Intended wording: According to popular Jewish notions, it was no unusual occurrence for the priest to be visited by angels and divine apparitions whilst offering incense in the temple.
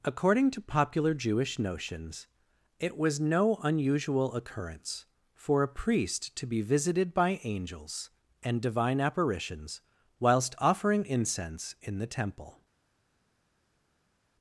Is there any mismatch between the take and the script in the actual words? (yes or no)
yes